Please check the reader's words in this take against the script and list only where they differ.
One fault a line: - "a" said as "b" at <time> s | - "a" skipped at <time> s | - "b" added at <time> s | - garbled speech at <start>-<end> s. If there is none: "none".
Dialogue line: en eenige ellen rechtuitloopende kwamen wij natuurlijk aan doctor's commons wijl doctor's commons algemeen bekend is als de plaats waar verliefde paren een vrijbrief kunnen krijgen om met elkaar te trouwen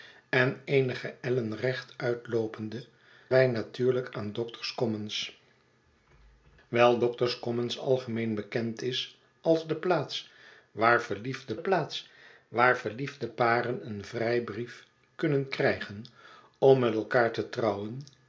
- "kwamen" skipped at 2.9 s
- "plaats waar verliefde" added at 11.6 s